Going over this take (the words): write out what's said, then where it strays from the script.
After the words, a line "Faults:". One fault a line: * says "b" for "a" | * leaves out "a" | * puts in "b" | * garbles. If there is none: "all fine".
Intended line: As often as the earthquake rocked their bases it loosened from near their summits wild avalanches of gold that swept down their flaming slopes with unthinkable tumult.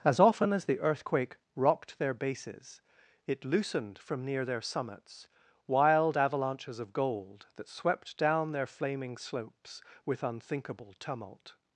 As often as the earthquake rocked their bases it loosened from near their summits wild avalanches of gold that swept down their flaming slopes with unthinkable tumult.
Faults:
all fine